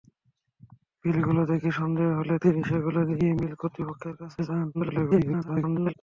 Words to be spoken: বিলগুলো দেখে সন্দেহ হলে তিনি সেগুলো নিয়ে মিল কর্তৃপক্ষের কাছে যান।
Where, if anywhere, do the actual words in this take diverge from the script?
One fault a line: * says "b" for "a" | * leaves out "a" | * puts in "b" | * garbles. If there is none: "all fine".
* garbles